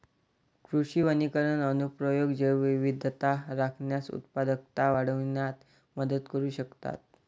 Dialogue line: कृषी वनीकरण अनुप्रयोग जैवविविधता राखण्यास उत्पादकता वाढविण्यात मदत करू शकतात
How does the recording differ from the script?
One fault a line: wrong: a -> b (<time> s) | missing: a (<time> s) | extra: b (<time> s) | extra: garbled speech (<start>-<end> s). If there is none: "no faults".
no faults